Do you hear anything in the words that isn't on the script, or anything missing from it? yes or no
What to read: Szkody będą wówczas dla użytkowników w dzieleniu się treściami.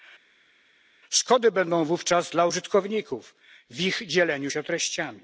yes